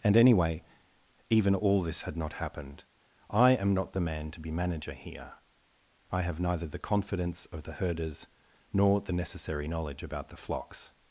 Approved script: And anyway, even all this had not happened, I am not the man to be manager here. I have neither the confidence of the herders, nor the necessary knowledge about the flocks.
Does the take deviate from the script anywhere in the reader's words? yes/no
no